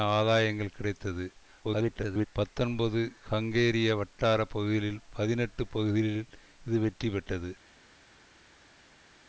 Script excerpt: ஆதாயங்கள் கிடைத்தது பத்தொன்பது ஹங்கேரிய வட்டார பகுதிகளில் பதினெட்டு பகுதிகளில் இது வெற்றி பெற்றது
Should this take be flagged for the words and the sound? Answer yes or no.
yes